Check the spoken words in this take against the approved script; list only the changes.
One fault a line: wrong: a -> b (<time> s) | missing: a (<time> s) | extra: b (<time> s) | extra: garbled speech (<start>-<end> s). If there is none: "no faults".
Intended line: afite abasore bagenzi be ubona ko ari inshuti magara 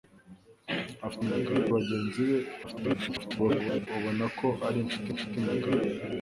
wrong: abasore -> magara (1.3 s)
extra: garbled speech (2.6-3.9 s)
extra: inshuti (5.1 s)